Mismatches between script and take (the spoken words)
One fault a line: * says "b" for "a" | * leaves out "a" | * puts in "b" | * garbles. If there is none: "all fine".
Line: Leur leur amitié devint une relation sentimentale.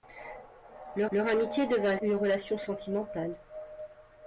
all fine